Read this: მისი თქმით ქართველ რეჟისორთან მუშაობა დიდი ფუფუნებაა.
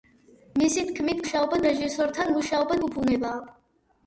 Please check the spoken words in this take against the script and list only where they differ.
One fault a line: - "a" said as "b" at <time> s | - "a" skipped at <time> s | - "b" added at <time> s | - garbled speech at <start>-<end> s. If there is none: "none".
- "ქართველ" said as "მუშაობა" at 1.2 s
- "დიდი" skipped at 2.8 s